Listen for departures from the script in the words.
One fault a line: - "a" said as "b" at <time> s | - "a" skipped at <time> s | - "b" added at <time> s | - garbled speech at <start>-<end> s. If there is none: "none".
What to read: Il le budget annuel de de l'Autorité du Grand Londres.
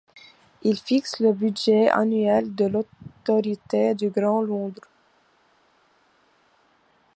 - "fixe" added at 0.8 s
- "de" skipped at 2.6 s